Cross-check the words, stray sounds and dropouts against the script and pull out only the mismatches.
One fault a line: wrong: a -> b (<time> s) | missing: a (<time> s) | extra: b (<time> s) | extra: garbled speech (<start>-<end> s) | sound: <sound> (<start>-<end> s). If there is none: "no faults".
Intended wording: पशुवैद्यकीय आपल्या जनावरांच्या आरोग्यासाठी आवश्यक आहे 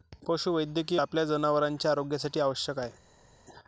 no faults